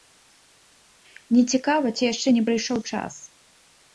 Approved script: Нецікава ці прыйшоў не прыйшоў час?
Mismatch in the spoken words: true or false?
true